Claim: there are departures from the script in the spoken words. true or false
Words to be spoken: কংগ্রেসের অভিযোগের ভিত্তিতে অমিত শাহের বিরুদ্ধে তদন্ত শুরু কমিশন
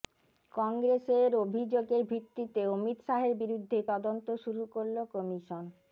true